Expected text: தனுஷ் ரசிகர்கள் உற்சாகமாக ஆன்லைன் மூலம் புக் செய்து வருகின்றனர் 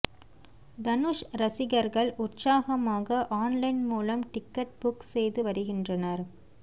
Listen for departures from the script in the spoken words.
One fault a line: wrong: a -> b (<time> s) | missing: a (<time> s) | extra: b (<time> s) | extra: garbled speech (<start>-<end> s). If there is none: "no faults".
extra: டிக்கெட் (4.3 s)